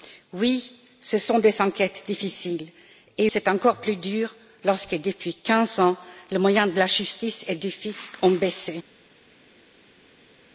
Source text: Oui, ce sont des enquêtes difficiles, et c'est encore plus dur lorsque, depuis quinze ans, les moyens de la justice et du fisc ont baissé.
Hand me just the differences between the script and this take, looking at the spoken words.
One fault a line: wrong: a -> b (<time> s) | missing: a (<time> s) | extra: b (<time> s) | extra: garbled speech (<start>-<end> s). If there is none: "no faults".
no faults